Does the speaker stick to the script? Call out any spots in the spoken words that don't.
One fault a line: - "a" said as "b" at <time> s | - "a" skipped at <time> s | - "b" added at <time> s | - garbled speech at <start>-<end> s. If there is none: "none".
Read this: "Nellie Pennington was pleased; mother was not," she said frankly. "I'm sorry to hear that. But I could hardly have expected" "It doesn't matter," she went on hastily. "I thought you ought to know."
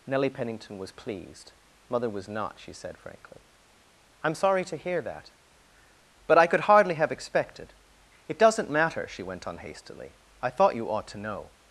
none